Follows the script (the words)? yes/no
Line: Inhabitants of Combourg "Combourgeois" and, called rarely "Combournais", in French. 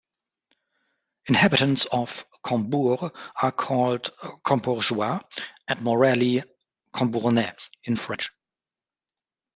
no